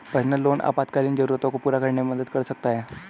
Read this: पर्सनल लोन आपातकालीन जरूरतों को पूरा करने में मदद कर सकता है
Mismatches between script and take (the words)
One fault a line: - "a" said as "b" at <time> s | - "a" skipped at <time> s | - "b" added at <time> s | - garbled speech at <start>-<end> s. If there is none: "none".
none